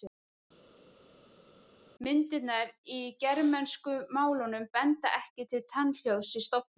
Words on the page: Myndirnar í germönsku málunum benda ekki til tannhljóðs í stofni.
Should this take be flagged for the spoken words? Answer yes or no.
no